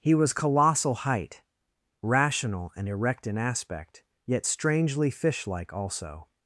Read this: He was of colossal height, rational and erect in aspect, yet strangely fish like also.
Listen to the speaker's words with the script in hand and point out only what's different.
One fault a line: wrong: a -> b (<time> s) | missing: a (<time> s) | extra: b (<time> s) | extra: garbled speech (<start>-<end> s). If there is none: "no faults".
missing: of (0.3 s)